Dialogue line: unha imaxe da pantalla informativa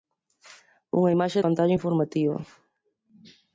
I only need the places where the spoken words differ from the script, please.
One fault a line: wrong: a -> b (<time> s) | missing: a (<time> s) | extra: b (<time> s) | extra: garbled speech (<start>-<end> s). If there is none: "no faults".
missing: da (1.4 s)